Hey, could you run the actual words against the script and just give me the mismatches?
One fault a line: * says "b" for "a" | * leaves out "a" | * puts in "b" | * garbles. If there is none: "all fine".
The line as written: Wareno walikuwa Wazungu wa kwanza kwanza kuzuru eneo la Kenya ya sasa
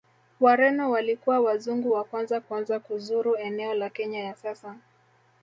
all fine